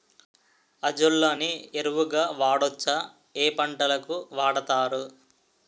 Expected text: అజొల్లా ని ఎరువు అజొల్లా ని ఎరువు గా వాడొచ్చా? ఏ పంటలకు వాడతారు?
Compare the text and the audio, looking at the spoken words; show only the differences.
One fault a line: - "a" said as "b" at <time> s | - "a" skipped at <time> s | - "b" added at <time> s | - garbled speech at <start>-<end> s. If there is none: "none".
- "అజొల్లా ని ఎరువు" skipped at 2.1 s